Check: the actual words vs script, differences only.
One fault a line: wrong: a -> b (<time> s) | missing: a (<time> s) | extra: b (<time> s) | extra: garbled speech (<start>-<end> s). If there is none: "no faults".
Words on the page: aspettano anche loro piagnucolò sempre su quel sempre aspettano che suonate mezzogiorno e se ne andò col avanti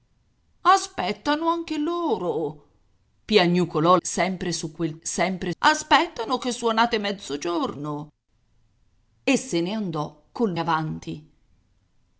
no faults